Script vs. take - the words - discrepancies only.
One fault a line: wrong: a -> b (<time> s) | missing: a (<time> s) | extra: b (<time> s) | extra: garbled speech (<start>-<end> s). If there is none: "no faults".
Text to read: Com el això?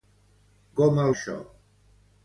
no faults